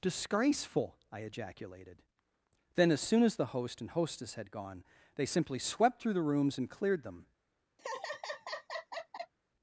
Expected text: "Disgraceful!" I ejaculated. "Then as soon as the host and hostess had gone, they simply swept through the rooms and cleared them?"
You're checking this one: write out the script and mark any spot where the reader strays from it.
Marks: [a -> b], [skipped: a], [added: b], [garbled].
"Disgraceful!" I ejaculated. "Then as soon as the host and hostess had gone, they simply swept through the rooms and cleared them?"